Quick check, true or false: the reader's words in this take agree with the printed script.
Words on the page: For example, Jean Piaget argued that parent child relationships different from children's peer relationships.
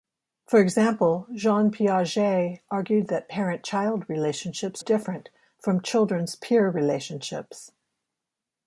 true